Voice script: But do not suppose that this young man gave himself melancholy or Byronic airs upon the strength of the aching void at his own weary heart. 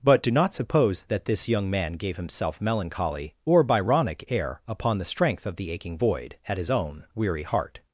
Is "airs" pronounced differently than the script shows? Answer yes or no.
yes